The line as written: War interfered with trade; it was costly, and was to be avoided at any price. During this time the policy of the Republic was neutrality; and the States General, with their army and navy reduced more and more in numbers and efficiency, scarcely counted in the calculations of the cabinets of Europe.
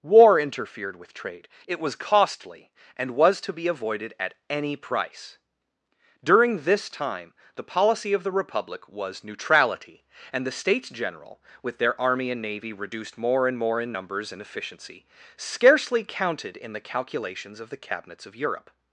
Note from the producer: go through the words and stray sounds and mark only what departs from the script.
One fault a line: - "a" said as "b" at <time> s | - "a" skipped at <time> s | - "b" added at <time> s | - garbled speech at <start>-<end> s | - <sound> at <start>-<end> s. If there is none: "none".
none